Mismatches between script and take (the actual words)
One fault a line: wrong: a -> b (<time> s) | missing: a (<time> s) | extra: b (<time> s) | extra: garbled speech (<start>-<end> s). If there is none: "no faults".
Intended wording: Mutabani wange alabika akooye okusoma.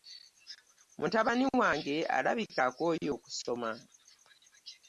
no faults